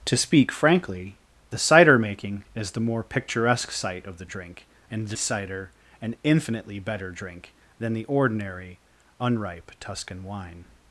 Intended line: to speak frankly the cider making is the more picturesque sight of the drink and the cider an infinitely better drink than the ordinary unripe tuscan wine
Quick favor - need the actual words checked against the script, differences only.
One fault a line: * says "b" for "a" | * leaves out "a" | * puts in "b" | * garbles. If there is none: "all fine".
all fine